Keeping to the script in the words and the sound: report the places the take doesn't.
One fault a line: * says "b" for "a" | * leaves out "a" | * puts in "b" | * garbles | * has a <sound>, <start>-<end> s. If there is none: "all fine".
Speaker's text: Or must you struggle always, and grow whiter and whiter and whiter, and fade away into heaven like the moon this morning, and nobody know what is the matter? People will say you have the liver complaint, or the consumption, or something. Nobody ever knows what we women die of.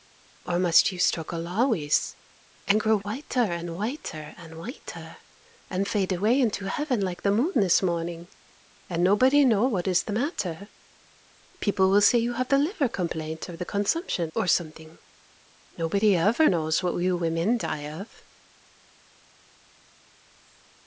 all fine